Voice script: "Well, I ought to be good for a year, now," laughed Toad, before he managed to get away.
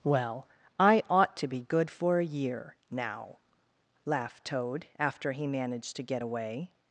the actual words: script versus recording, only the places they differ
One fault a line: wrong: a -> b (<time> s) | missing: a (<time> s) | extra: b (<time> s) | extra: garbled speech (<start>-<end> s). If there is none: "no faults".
wrong: before -> after (5.0 s)